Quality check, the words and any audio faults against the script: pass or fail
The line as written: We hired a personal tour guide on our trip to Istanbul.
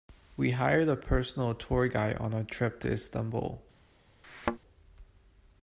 fail